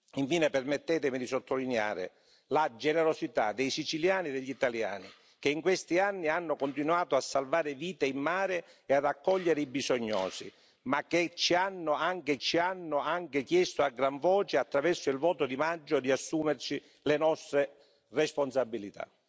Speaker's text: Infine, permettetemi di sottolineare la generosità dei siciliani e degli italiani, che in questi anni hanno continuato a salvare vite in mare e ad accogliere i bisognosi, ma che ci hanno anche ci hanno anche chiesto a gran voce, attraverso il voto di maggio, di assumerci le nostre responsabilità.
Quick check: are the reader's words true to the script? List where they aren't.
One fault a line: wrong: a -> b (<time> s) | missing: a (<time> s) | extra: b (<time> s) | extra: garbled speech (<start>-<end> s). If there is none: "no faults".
no faults